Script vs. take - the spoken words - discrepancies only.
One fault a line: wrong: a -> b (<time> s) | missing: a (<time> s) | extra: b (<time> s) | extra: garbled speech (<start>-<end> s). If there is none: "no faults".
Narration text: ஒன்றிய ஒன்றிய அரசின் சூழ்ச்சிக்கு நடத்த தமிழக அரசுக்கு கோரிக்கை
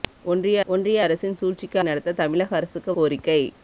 no faults